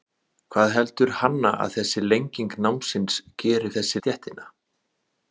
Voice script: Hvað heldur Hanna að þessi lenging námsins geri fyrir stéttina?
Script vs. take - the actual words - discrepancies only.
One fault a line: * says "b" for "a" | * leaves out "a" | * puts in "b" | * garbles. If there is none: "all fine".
* says "þessi" for "fyrir"